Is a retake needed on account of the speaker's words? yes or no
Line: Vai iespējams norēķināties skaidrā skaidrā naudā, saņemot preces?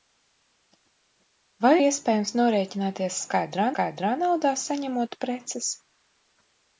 no